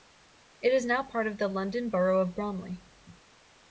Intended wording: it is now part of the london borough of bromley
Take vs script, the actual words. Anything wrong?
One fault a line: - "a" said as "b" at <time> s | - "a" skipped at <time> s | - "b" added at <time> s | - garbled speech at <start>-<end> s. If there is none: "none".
none